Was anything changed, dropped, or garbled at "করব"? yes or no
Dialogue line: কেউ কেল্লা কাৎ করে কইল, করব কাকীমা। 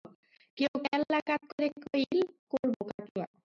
no